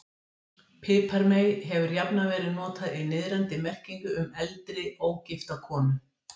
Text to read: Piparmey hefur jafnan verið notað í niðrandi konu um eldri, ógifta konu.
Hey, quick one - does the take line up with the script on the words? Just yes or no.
no